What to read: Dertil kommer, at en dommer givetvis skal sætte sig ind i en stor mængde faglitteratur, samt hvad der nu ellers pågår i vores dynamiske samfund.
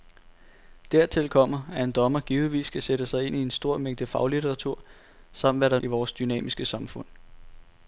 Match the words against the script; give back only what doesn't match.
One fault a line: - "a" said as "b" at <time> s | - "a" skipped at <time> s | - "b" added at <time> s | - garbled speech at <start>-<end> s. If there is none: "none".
- "nu ellers pågår" skipped at 5.8 s